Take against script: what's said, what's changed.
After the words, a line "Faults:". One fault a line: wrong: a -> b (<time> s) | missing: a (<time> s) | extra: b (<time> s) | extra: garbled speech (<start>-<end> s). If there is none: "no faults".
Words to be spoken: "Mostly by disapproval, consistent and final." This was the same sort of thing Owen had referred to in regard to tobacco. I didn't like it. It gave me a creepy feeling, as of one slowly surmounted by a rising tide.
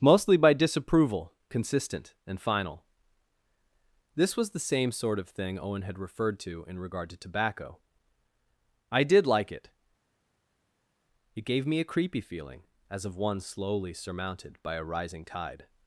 "Mostly by disapproval, consistent and final." This was the same sort of thing Owen had referred to in regard to tobacco. I did like it. It gave me a creepy feeling, as of one slowly surmounted by a rising tide.
Faults:
wrong: didn't -> did (9.0 s)